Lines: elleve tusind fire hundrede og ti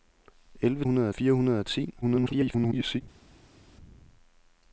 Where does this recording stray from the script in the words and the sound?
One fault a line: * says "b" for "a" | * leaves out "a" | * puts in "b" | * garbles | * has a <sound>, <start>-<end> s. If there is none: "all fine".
* says "hundrede" for "tusind"
* garbles